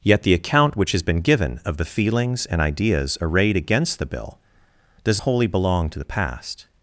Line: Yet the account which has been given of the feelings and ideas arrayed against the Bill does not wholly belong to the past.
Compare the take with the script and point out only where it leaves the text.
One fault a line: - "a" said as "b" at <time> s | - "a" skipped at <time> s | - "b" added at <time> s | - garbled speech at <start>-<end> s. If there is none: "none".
- "not" skipped at 5.2 s